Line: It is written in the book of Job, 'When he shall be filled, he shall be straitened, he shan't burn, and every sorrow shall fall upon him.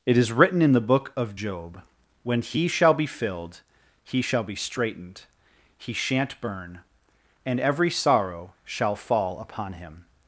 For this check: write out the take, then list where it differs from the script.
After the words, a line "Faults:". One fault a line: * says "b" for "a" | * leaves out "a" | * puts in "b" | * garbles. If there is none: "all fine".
It is written in the book of Job, 'When he shall be filled, he shall be straitened, he shan't burn, and every sorrow shall fall upon him.
Faults:
all fine